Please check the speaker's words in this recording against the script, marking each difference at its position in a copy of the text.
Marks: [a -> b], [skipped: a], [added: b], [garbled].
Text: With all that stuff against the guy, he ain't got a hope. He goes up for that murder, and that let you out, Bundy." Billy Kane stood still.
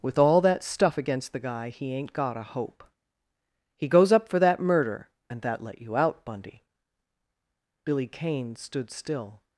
With all that stuff against the guy, he ain't got a hope. He goes up for that murder, and that let you out, Bundy." Billy Kane stood still.